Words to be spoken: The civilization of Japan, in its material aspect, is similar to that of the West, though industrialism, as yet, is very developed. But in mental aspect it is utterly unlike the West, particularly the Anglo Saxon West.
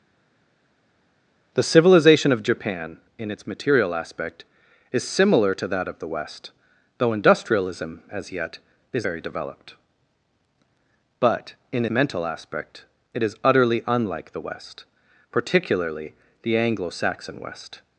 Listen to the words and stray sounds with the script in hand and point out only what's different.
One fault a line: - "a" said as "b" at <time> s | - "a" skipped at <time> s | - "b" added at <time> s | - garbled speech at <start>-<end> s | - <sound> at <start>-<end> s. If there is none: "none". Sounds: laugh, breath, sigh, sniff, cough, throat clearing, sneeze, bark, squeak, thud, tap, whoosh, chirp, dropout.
none